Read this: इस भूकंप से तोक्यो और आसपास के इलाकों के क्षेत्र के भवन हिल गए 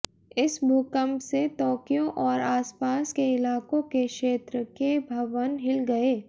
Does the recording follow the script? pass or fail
pass